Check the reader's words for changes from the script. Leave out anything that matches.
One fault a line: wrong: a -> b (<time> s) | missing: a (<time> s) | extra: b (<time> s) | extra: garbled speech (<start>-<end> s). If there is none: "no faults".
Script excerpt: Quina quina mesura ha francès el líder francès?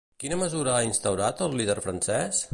missing: quina (0.4 s)
wrong: francès -> instaurat (0.9 s)